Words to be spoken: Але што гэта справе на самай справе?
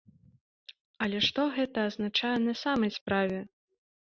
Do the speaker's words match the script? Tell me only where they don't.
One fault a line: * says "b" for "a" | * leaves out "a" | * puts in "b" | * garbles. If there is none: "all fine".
* says "азначае" for "справе"